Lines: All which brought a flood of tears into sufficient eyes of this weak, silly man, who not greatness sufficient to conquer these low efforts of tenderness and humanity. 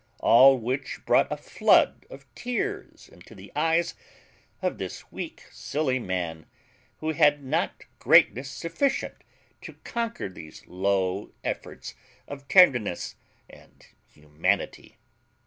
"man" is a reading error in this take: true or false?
false